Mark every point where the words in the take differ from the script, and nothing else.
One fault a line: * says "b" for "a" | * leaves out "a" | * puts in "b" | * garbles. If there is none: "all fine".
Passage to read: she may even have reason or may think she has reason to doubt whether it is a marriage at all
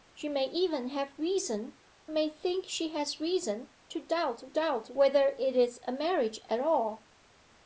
* leaves out "or"
* puts in "doubt"